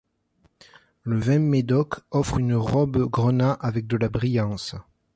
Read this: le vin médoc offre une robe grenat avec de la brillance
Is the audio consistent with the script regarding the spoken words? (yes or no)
yes